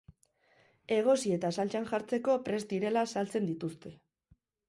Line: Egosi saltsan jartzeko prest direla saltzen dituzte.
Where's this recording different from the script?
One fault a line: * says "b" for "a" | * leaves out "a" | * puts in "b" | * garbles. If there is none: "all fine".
* puts in "eta"